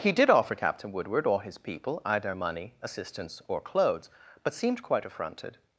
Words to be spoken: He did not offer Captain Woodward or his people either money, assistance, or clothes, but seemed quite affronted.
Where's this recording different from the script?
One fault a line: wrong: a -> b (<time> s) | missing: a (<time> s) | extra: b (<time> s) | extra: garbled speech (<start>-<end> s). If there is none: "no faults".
missing: not (0.3 s)